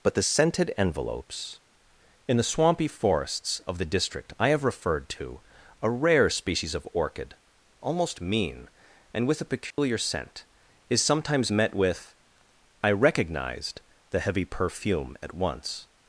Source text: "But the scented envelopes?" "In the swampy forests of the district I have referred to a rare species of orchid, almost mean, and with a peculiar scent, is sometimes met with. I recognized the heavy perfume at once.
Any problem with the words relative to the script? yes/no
no